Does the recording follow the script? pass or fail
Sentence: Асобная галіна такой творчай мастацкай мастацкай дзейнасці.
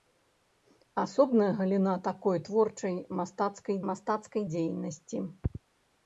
pass